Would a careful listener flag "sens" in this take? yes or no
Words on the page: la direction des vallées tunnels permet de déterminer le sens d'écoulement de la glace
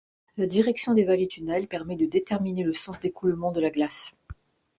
no